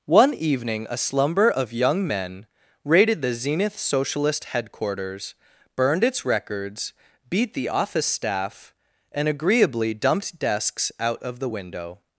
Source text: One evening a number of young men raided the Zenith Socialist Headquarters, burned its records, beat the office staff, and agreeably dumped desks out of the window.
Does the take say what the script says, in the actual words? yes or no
no